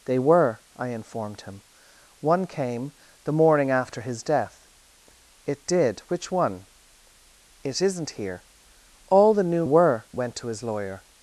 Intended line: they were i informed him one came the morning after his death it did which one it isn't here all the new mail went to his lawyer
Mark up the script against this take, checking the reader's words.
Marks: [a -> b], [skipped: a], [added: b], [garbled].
they were i informed him one came the morning after his death it did which one it isn't here all the new [mail -> were] went to his lawyer